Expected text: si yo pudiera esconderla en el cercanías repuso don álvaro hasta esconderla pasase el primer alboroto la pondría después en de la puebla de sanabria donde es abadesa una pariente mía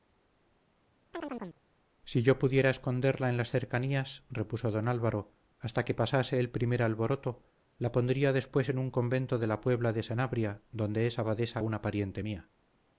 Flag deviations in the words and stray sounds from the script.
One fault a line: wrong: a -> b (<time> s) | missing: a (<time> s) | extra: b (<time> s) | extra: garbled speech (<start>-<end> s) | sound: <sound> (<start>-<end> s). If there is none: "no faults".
sound: chirp (1.1-1.6 s)
wrong: el -> las (3.4 s)
wrong: esconderla -> que (5.8 s)
extra: un convento (8.8 s)